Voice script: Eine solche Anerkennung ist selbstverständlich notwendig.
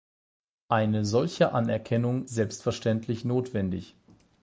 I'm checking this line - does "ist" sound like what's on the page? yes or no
no